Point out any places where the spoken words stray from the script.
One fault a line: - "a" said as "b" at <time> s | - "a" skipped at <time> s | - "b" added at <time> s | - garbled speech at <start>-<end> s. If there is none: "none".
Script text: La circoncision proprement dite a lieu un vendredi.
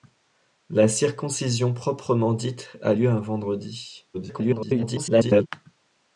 - garbled speech at 4.1-5.5 s